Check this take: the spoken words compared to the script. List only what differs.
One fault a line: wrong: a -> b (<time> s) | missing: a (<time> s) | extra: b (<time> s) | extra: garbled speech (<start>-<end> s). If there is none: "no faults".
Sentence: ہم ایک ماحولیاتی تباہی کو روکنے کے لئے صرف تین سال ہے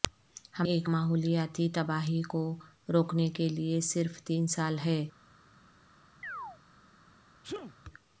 no faults